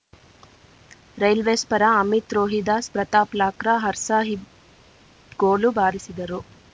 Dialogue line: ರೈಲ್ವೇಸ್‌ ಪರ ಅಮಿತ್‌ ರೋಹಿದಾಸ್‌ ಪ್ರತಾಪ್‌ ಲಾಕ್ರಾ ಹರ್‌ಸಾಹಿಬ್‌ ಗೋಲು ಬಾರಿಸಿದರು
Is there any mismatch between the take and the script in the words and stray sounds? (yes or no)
no